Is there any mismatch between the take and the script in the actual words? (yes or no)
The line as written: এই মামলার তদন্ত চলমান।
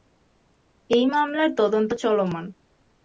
no